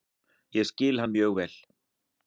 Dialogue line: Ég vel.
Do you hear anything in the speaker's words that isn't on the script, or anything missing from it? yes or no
yes